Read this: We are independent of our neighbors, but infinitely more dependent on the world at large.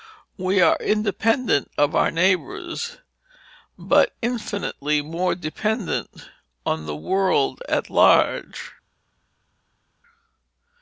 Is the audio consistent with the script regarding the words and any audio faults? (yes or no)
yes